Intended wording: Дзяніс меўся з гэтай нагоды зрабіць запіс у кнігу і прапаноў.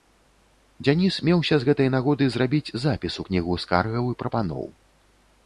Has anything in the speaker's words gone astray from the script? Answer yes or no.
yes